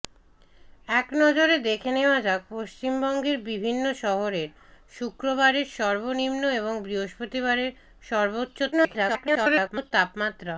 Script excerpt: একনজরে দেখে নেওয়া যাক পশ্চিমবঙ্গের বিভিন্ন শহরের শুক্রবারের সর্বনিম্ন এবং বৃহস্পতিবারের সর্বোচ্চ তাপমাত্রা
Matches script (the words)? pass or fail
fail